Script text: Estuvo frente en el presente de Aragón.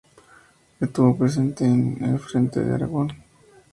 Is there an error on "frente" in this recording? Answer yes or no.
yes